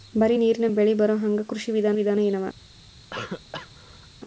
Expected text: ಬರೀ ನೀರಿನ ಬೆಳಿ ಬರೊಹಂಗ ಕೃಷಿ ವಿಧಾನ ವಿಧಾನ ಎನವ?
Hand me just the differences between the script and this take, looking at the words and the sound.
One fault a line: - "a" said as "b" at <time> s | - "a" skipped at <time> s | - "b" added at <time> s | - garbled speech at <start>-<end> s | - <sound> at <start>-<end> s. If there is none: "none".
- cough at 3.1-4.1 s